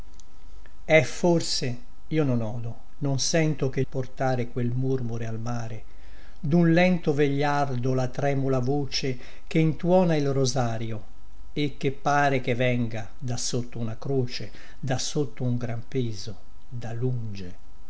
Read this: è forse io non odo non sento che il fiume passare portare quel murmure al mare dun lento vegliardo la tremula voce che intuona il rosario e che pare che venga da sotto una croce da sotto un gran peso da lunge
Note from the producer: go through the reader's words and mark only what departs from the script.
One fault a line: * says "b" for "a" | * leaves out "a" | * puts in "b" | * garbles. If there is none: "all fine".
* leaves out "il fiume passare"